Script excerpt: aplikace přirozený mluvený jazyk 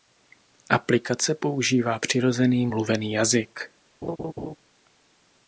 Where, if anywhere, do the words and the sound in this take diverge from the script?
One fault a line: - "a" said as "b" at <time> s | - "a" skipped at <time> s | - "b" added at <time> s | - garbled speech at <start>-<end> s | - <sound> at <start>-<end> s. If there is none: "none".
- "používá" added at 1.4 s
- laugh at 4.0-4.6 s